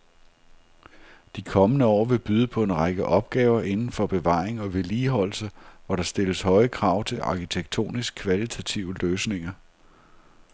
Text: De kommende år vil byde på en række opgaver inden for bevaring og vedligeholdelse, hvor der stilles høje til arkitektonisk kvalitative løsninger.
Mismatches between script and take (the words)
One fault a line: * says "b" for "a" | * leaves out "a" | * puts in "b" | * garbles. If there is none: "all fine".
* puts in "krav"